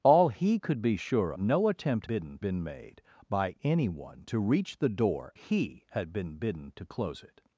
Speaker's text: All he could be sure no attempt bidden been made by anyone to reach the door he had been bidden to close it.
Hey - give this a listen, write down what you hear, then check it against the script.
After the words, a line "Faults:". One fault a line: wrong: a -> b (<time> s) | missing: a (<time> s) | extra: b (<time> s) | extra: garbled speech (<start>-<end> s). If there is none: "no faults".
All he could be sure no attempt bidden been made by anyone to reach the door he had been bidden to close it.
Faults:
no faults